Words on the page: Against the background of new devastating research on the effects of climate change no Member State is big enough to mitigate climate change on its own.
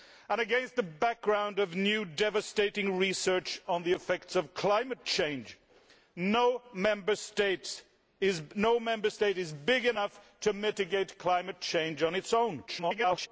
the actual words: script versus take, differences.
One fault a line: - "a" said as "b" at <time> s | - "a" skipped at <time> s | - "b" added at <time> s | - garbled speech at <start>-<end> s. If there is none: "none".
- garbled speech at 12.7-13.3 s